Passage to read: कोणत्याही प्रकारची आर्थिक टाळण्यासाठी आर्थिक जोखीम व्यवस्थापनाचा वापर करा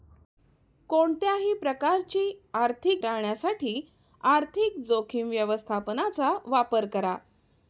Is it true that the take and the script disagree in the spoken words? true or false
false